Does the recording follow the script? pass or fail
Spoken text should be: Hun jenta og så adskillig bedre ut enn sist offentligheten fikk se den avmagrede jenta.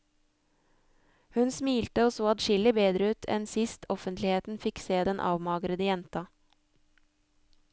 fail